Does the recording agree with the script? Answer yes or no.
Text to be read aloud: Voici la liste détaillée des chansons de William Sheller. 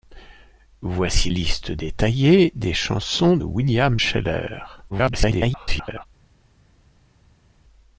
no